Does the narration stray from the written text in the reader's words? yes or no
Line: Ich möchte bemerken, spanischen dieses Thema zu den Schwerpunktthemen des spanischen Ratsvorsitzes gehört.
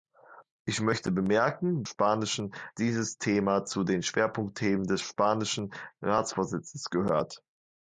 no